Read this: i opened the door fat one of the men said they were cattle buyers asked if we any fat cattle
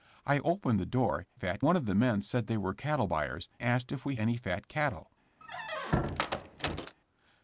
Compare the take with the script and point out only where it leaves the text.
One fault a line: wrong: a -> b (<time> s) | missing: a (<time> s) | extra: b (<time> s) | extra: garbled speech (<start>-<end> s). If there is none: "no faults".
no faults